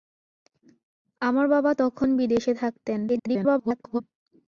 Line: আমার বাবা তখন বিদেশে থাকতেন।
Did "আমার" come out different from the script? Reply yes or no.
no